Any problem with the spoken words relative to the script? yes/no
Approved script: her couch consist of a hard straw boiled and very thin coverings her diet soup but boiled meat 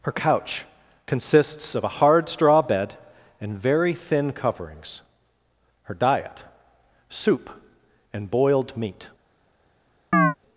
yes